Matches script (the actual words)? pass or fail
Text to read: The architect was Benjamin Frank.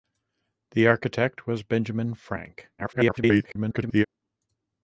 fail